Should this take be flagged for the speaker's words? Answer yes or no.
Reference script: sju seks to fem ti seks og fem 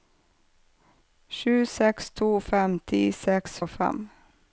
no